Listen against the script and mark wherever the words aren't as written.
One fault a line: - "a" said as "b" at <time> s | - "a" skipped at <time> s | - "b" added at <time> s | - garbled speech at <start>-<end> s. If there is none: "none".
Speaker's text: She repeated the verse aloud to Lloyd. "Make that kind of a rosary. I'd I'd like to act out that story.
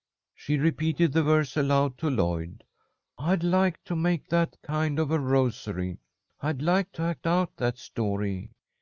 - "I'd like to" added at 3.2 s
- "I'd" skipped at 6.6 s